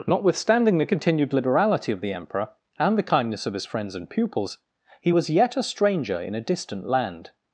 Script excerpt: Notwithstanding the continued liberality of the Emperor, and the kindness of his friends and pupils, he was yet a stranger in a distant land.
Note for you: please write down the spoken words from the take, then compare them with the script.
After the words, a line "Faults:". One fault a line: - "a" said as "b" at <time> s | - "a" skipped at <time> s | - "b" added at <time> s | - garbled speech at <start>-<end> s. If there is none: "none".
Notwithstanding the continued liberality of the Emperor, and the kindness of his friends and pupils, he was yet a stranger in a distant land.
Faults:
none